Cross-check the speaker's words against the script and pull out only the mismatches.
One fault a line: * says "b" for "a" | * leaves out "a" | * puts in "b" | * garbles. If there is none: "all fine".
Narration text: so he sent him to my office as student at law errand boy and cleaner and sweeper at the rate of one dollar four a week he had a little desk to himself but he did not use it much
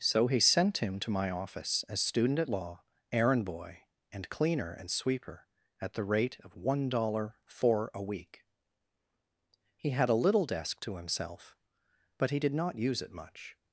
all fine